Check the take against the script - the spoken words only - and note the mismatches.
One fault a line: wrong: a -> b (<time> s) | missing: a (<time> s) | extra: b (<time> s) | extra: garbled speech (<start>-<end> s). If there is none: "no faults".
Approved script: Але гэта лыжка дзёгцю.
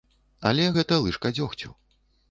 no faults